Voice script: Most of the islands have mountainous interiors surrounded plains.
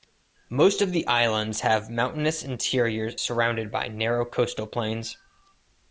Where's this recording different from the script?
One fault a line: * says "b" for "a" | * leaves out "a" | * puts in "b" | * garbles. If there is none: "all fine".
* puts in "by narrow coastal"